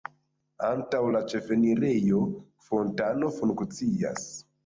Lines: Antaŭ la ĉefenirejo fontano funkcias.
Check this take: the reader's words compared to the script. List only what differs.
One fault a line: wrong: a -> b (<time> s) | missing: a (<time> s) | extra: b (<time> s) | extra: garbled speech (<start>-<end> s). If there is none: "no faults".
no faults